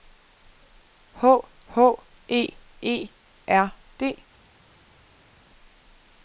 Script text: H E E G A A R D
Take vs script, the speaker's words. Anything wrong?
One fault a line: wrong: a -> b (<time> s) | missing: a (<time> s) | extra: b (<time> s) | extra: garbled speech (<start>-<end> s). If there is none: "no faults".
extra: h (1.7 s)
missing: G A A (3.1 s)